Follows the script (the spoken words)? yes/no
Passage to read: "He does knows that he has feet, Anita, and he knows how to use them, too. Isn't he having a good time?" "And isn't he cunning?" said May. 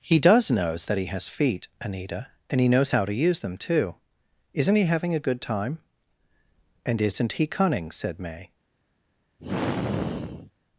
yes